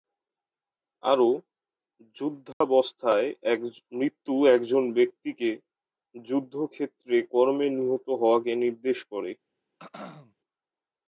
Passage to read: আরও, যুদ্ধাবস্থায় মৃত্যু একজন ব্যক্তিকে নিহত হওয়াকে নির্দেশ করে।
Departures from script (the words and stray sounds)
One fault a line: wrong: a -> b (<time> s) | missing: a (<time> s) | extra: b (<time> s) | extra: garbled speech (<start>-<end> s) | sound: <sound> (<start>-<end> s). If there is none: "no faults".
sound: dropout (2.5-2.6 s)
extra: যুদ্ধক্ষেত্রে কর্মে (6.2 s)
sound: throat clearing (9.8-10.3 s)